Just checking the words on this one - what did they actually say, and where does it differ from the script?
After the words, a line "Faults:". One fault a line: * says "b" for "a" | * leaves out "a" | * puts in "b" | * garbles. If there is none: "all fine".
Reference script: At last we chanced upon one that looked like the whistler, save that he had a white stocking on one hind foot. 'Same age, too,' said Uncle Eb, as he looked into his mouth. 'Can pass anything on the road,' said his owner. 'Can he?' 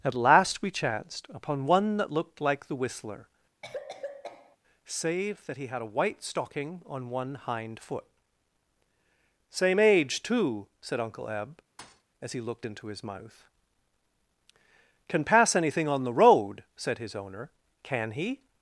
At last we chanced upon one that looked like the whistler, save that he had a white stocking on one hind foot. 'Same age, too,' said Uncle Eb, as he looked into his mouth. 'Can pass anything on the road,' said his owner. 'Can he?'
Faults:
all fine